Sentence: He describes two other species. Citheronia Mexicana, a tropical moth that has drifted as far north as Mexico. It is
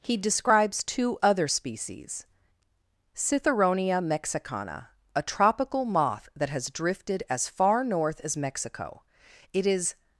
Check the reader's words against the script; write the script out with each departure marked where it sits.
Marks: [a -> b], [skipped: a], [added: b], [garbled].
He describes two other species. Citheronia Mexicana, a tropical moth that has drifted as far north as Mexico. It is